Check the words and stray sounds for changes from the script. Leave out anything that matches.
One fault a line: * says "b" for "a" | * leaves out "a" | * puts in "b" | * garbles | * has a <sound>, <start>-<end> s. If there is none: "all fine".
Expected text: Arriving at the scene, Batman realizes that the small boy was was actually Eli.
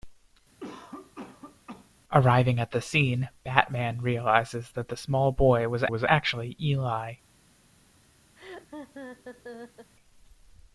* has a cough, 0.6-1.9 s
* has a laugh, 8.4-9.9 s